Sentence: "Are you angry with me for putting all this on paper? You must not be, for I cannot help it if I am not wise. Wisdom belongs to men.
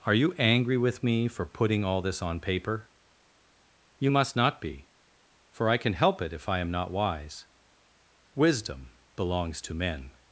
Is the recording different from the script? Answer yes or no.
yes